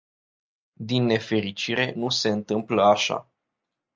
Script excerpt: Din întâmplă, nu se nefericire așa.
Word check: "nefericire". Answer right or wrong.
wrong